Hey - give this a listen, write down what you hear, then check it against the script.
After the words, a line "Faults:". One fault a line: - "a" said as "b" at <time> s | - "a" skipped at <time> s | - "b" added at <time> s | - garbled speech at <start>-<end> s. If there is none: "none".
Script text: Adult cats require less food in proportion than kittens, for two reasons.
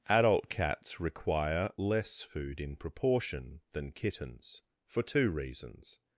Adult cats require less food in proportion than kittens, for two reasons.
Faults:
none